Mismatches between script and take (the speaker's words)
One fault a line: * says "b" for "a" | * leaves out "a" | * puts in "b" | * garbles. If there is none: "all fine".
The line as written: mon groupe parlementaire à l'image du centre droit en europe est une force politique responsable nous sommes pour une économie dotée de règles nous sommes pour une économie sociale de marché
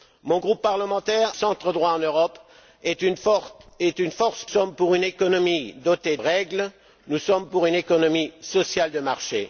* leaves out "à l'image du"
* leaves out "politique responsable nous"
* leaves out "de"